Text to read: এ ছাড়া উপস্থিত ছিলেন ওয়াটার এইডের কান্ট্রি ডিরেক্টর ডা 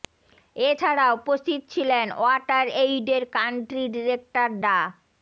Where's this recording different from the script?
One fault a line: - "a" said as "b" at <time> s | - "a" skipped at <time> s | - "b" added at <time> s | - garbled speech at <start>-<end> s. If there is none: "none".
none